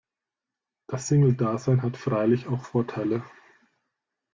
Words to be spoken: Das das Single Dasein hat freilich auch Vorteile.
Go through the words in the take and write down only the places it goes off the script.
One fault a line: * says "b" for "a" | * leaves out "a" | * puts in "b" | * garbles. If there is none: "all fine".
* leaves out "das"